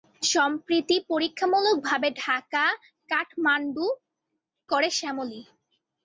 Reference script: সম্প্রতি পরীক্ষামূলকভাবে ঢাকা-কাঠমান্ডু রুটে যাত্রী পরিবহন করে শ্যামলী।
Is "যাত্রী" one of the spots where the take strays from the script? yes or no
yes